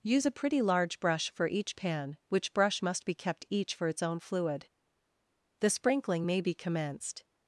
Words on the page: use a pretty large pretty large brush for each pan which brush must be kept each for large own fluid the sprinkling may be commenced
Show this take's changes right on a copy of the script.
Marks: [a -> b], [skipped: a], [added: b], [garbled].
use a pretty large [skipped: pretty large] brush for each pan which brush must be kept each for [large -> its] own fluid the sprinkling may be commenced